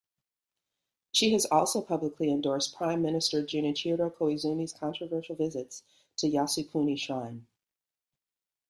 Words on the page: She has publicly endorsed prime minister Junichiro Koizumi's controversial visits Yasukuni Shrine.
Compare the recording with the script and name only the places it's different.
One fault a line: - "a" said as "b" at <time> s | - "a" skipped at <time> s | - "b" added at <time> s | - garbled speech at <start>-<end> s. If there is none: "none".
- "also" added at 1.4 s
- "to" added at 6.2 s